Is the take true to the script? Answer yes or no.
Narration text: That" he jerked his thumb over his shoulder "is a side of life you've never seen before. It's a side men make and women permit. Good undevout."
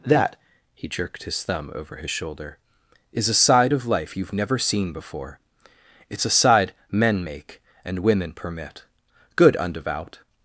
yes